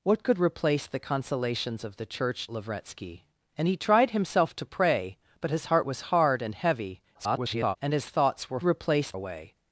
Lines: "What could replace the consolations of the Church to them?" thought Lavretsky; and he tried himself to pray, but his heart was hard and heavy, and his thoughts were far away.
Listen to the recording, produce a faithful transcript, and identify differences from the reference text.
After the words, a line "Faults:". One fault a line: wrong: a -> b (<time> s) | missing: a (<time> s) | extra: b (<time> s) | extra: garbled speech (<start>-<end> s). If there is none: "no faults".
"What could replace the consolations of the Church Lavretsky; and he tried himself to pray, but his heart was hard and heavy, [garbled] and his thoughts were replace away.
Faults:
missing: to them thought (2.5 s)
extra: garbled speech (7.1-7.8 s)
wrong: far -> replace (8.6 s)